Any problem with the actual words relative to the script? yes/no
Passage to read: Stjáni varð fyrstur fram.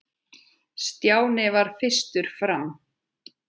no